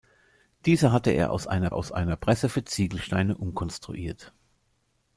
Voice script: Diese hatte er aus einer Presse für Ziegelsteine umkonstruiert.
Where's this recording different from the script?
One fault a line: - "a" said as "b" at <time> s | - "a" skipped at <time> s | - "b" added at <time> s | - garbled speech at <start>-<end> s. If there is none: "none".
- "aus einer" added at 1.7 s